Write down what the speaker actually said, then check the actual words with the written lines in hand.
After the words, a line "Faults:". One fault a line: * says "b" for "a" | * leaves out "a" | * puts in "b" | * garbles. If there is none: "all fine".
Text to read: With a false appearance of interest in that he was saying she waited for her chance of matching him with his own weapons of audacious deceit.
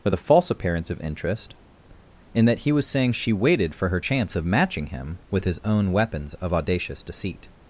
With a false appearance of interest in that he was saying she waited for her chance of matching him with his own weapons of audacious deceit.
Faults:
all fine